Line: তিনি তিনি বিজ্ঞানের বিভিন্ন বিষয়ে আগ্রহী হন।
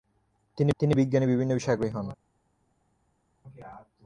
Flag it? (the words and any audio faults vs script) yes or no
no